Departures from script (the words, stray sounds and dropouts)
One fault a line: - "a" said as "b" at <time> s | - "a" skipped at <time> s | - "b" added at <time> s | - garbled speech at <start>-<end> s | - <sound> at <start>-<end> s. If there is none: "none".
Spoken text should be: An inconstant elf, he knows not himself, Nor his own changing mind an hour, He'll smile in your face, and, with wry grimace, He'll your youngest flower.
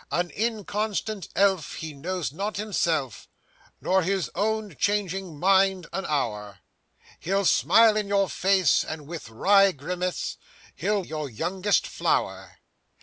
none